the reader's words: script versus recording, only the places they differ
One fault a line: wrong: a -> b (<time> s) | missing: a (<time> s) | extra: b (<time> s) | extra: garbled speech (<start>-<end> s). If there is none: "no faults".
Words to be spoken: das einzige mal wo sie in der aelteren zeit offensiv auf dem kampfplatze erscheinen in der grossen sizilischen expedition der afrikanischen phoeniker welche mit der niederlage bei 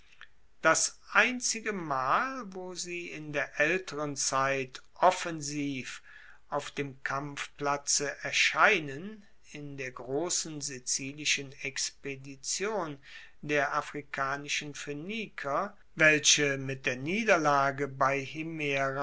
no faults